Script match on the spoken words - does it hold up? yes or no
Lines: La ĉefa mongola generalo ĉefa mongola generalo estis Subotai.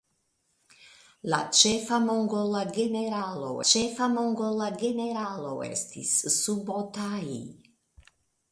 yes